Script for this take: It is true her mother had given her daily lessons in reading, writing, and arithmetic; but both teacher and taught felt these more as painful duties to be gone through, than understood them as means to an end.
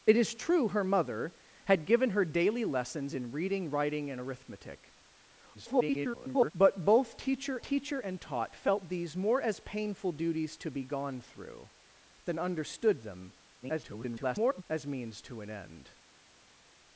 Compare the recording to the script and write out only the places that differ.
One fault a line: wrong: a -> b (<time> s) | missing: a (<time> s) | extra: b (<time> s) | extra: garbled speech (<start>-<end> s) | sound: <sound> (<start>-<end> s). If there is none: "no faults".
extra: garbled speech (5.5-6.5 s)
extra: teacher (7.6 s)
extra: garbled speech (13.6-14.6 s)